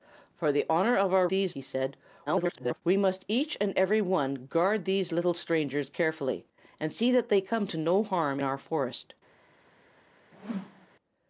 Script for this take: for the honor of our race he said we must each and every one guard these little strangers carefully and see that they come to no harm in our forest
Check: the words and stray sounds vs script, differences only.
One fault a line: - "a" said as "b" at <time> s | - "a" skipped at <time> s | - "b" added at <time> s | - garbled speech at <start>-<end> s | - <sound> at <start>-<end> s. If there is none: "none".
- "race" said as "these" at 1.3 s
- garbled speech at 2.3-2.8 s
- "in" skipped at 8.4 s
- whoosh at 10.3-10.9 s